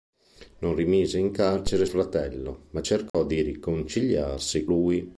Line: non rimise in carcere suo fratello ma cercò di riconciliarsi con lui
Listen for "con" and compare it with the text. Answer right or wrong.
wrong